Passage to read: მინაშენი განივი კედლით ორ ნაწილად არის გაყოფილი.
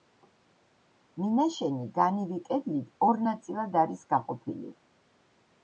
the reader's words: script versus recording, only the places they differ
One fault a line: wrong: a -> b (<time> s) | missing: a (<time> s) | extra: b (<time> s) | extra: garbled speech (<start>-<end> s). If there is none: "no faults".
no faults